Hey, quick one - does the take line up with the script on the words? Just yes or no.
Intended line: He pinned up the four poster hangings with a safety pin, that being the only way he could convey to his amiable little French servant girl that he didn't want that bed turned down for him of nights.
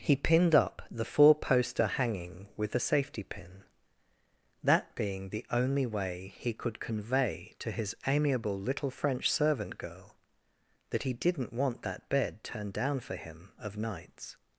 no